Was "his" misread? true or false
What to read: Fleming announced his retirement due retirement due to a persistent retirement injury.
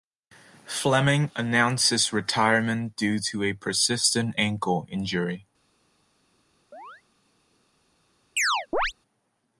false